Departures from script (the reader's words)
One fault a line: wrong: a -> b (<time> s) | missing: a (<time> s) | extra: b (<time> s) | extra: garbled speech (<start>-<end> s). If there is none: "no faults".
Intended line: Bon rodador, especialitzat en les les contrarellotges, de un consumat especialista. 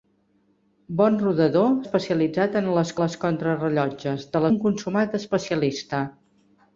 no faults